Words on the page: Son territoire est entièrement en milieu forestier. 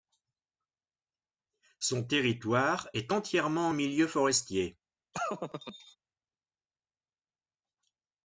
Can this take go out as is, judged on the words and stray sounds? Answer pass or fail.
fail